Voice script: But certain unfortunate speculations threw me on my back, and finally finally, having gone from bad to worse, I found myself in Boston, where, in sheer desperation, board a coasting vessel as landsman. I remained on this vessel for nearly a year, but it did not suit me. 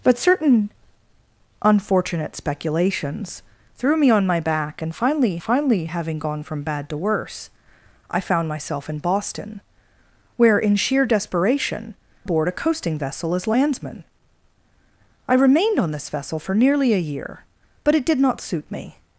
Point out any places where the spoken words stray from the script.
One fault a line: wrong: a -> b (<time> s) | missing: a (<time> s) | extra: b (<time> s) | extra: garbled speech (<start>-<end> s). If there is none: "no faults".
no faults